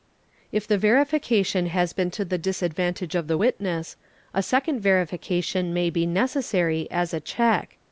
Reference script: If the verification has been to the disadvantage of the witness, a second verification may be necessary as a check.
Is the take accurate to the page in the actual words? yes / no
yes